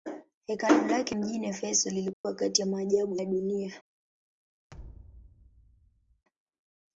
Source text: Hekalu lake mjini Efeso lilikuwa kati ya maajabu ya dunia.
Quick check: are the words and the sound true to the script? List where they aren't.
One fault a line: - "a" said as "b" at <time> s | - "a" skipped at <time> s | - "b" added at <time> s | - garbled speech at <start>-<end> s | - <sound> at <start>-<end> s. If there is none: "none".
- dropout at 2.1-2.2 s
- thud at 4.7-6.2 s